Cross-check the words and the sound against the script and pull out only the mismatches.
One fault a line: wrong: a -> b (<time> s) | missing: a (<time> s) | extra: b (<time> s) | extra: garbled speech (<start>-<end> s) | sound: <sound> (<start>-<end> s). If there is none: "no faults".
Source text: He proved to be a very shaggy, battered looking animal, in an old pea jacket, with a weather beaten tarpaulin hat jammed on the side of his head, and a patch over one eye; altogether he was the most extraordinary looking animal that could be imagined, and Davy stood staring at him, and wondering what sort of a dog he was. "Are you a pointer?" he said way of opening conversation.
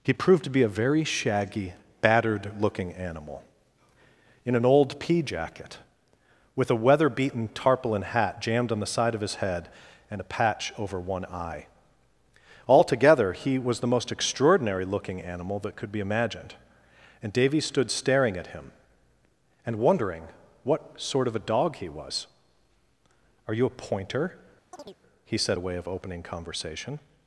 sound: chirp (24.7-25.0 s)